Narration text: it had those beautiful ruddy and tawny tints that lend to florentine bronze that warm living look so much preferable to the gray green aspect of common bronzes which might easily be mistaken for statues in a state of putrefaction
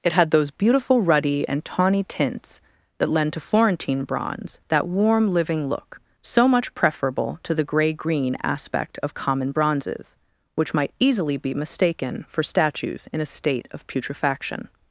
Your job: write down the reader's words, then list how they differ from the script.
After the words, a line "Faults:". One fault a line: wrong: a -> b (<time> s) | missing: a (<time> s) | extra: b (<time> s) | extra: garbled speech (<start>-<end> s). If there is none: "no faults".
it had those beautiful ruddy and tawny tints that lend to florentine bronze that warm living look so much preferable to the gray green aspect of common bronzes which might easily be mistaken for statues in a state of putrefaction
Faults:
no faults